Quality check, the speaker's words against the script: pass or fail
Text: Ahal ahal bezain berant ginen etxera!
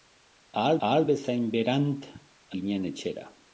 pass